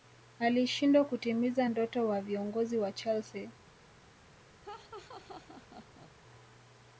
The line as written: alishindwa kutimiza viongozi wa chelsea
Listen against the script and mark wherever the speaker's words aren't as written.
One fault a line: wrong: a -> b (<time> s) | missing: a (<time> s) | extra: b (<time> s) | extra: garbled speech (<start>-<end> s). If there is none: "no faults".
extra: ndoto wa (1.7 s)